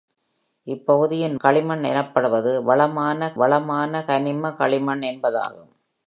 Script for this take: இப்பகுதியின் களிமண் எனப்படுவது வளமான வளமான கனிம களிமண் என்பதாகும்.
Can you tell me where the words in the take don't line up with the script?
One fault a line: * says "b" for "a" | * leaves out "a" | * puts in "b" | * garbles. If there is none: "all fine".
all fine